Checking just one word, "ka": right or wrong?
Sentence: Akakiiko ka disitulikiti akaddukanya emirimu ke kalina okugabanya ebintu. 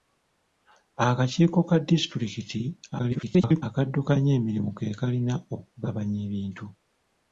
right